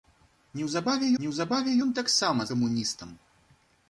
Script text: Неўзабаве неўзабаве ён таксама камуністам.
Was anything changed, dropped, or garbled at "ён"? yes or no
no